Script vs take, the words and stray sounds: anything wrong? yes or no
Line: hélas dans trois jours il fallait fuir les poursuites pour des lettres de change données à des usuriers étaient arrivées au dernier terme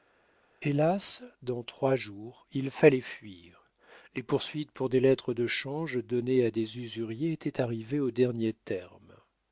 no